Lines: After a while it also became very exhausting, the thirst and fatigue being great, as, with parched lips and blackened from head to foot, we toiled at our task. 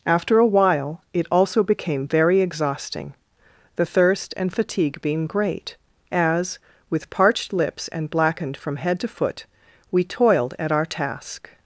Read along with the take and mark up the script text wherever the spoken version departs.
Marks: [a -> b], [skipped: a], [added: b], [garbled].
After a while it also became very exhausting, the thirst and fatigue being great, as, with parched lips and blackened from head to foot, we toiled at our task.